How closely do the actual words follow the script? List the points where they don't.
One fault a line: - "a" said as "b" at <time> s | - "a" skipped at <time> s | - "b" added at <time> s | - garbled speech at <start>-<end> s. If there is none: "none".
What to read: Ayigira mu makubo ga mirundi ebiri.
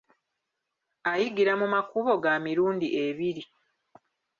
none